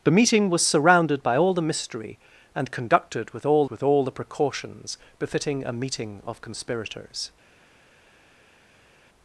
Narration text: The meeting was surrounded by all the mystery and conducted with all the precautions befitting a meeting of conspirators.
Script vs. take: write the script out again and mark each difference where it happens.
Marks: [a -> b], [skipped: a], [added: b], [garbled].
The meeting was surrounded by all the mystery and conducted with all [added: with all] the precautions befitting a meeting of conspirators.